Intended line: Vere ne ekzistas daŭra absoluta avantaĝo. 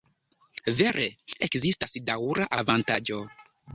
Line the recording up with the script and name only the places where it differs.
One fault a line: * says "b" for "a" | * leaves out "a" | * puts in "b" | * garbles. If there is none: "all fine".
* leaves out "ne"
* leaves out "absoluta"